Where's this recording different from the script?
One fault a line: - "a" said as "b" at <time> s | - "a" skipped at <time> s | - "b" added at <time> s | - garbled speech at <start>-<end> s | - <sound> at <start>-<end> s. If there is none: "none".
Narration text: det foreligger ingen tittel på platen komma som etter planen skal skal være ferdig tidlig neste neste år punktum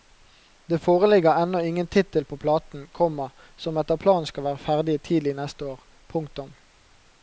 - "ennå" added at 1.4 s
- "skal" skipped at 4.5 s
- "neste" skipped at 5.7 s